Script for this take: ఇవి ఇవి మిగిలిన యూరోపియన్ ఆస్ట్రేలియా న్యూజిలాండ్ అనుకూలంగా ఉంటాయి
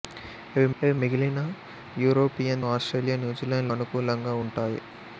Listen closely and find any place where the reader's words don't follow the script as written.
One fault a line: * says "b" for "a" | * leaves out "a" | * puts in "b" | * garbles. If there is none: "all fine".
all fine